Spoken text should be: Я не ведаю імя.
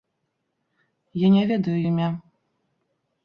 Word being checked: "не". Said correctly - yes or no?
yes